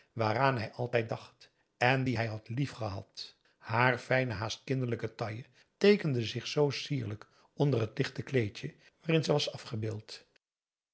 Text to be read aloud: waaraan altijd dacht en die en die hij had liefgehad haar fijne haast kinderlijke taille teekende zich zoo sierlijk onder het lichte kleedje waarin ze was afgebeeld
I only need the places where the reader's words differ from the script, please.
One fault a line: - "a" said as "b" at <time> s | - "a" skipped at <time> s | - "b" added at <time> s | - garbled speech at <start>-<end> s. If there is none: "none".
- "hij" added at 0.6 s
- "en die" skipped at 2.2 s